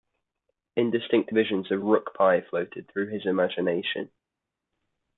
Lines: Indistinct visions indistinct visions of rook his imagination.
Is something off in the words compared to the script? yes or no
yes